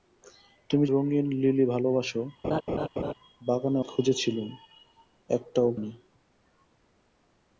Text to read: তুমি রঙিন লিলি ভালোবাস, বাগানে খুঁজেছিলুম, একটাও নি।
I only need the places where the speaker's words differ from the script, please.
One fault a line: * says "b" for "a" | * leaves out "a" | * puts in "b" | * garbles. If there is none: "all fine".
all fine